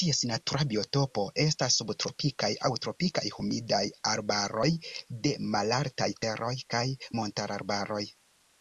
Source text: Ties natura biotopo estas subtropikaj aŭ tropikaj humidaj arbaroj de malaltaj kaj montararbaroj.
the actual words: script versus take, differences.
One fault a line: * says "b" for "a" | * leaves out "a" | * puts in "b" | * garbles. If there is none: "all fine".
* puts in "teroj"